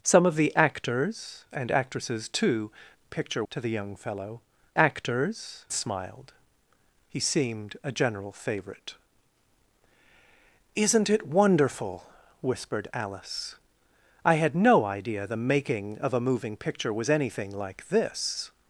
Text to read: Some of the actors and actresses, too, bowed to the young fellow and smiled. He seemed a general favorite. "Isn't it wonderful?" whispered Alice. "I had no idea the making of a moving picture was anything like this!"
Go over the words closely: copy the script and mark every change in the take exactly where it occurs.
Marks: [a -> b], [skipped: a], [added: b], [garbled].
Some of the actors and actresses, too, [bowed -> picture] to the young fellow [and -> actors] smiled. He seemed a general favorite. "Isn't it wonderful?" whispered Alice. "I had no idea the making of a moving picture was anything like this!"